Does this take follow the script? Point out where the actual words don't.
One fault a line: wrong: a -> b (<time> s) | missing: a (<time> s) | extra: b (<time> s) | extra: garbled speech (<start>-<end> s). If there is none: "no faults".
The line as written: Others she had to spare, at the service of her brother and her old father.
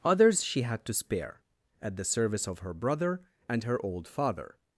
no faults